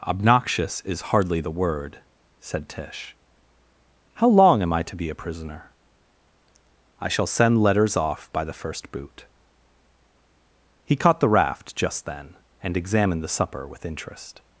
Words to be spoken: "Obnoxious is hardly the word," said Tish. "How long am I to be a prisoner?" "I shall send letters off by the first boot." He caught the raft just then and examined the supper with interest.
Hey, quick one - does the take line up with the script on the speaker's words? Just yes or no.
yes